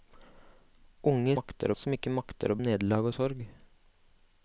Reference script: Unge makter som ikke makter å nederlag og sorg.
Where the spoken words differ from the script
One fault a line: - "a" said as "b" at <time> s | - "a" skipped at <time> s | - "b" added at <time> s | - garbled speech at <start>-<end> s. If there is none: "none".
none